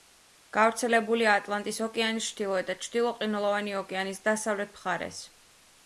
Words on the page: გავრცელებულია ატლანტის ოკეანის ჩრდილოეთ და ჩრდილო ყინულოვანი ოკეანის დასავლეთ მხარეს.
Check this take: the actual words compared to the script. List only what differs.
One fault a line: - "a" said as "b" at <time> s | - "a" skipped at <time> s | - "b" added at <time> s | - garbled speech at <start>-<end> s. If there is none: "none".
none